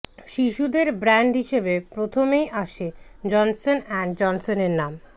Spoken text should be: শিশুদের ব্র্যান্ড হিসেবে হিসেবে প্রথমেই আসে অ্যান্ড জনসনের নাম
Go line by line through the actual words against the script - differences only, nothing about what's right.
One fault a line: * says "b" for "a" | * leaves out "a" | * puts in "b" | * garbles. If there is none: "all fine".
* leaves out "হিসেবে"
* puts in "জনসন"